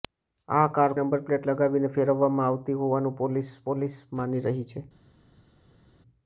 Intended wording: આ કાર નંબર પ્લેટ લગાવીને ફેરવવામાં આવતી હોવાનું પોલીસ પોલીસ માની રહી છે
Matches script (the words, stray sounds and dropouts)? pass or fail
pass